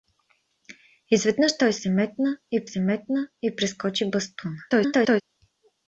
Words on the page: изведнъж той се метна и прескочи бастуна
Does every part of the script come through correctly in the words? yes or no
no